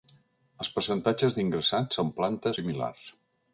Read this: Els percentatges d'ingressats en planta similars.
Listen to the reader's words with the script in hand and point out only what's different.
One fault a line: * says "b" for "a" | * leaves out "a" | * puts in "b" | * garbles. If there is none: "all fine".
all fine